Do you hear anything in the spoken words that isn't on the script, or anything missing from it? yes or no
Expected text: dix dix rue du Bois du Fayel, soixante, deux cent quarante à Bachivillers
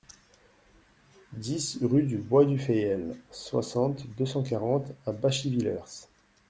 yes